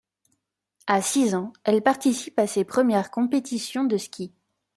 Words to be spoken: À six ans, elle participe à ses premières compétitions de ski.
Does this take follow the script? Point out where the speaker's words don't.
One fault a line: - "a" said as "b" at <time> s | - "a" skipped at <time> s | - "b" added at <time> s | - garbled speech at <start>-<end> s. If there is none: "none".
none